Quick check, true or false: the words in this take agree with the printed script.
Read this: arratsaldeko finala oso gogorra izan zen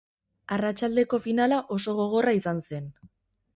true